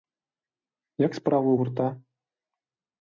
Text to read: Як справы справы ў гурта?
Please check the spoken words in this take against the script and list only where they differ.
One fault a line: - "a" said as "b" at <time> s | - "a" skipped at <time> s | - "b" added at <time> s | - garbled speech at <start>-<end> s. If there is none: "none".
- "справы" skipped at 1.5 s